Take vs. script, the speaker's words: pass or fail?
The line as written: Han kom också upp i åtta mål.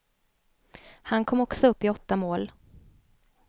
pass